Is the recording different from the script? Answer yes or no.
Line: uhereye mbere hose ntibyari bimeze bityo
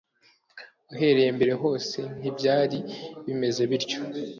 no